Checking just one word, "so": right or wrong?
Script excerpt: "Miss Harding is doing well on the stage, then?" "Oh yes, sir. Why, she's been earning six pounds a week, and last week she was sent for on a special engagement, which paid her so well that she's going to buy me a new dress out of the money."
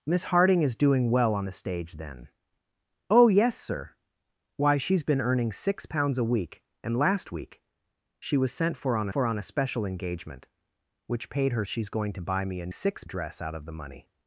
wrong